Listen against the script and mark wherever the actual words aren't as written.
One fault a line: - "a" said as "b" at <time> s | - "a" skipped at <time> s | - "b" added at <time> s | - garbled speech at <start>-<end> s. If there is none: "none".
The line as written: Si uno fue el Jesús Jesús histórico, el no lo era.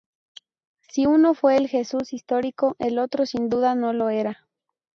- "Jesús" skipped at 2.1 s
- "otro sin duda" added at 3.0 s